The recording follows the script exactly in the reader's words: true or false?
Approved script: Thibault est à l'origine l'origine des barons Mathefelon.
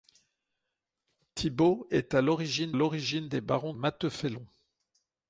true